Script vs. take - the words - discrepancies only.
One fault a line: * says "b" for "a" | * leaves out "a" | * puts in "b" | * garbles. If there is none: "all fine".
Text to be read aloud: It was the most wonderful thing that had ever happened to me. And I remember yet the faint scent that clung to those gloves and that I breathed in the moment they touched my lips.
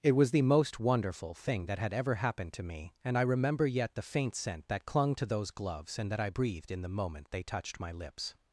all fine